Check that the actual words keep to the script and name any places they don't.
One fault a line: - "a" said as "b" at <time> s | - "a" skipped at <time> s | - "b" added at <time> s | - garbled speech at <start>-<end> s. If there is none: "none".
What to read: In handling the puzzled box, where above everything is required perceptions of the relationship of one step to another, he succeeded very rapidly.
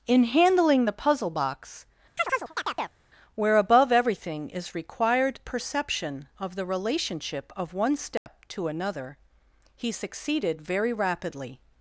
- "puzzled" said as "puzzle" at 0.9 s
- "perceptions" said as "perception" at 5.5 s